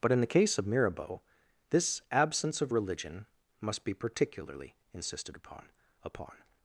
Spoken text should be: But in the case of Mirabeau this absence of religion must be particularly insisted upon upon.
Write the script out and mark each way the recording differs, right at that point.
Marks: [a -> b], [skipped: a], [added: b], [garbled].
But in the case of Mirabeau this absence of religion must be particularly insisted upon upon.